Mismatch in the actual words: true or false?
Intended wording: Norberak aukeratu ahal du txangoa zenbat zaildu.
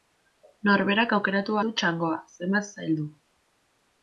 true